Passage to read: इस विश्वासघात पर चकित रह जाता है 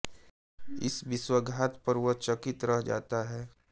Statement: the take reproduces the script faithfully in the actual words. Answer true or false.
false